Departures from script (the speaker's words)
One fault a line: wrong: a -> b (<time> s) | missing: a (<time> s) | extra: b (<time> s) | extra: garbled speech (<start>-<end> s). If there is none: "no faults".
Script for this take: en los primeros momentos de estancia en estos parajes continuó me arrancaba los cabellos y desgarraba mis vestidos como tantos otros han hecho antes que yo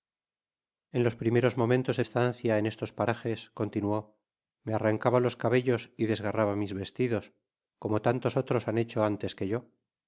no faults